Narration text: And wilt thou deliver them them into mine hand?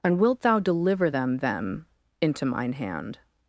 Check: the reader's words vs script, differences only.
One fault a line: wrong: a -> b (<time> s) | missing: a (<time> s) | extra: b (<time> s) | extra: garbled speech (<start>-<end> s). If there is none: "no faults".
no faults